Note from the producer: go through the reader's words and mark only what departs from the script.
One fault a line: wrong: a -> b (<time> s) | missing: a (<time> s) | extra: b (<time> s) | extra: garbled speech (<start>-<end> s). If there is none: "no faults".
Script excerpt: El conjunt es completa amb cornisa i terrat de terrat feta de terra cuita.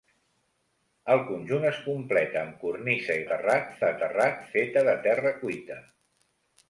no faults